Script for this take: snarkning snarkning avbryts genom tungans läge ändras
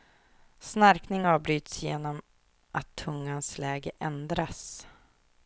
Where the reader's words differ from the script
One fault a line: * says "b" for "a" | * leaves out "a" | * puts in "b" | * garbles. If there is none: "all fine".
* leaves out "snarkning"
* puts in "att"